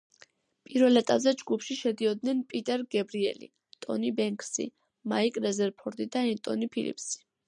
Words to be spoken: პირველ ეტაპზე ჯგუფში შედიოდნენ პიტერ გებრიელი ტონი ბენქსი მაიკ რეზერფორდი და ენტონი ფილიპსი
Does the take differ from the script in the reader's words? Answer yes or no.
no